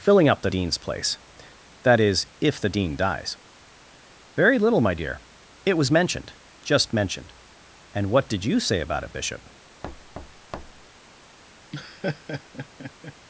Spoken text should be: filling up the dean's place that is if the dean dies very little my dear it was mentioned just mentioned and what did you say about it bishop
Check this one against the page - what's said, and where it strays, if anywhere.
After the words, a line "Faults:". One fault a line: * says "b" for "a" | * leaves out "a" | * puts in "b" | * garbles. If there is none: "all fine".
filling up the dean's place that is if the dean dies very little my dear it was mentioned just mentioned and what did you say about it bishop
Faults:
all fine